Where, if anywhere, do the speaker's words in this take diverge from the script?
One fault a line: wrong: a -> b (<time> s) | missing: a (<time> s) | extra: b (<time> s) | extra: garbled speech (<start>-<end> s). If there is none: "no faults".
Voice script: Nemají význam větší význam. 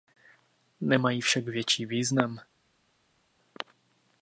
wrong: význam -> však (1.2 s)